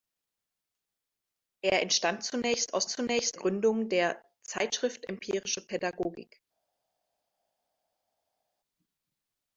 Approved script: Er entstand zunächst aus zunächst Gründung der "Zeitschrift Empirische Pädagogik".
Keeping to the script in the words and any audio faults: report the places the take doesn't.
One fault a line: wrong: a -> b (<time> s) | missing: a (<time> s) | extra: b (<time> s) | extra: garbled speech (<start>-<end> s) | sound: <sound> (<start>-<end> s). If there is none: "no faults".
no faults